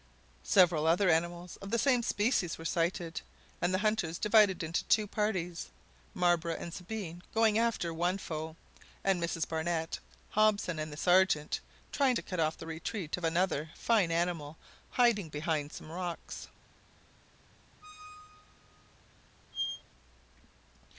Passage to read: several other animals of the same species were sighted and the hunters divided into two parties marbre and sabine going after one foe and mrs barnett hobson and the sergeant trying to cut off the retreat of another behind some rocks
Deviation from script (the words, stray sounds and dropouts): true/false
true